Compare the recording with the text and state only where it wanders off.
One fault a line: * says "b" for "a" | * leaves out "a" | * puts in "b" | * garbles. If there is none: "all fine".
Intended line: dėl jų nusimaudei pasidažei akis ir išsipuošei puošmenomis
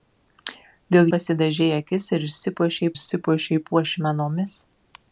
* leaves out "jų nusimaudei"
* puts in "išsipuošei"